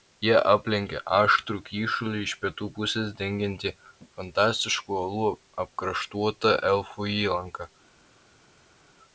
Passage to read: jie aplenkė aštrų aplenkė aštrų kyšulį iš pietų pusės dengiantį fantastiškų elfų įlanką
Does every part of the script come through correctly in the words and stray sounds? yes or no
no